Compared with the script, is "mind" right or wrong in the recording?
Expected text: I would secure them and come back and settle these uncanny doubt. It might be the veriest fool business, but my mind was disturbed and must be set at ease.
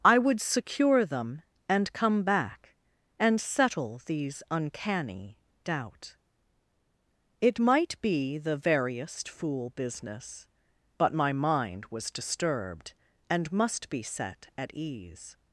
right